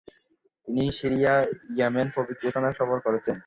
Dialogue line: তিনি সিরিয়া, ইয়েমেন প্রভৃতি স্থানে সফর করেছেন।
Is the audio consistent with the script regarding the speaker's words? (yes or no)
yes